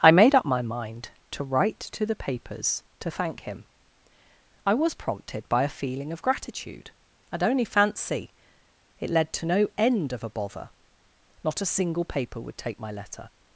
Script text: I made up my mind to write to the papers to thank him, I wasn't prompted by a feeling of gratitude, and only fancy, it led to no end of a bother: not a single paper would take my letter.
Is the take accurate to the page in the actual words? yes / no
no